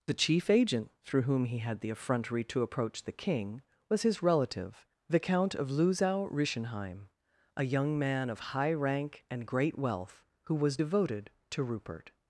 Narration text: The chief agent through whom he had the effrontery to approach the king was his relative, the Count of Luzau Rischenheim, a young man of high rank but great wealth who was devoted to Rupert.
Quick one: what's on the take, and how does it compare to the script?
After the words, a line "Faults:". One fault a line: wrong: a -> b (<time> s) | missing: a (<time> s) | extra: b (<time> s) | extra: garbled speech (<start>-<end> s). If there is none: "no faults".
The chief agent through whom he had the effrontery to approach the king was his relative, the Count of Luzau Rischenheim, a young man of high rank and great wealth who was devoted to Rupert.
Faults:
wrong: but -> and (9.3 s)